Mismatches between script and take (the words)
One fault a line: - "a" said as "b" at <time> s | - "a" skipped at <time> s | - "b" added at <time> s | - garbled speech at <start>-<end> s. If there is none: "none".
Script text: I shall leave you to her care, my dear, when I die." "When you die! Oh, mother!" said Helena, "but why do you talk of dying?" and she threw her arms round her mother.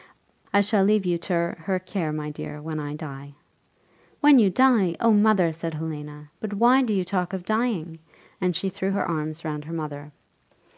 none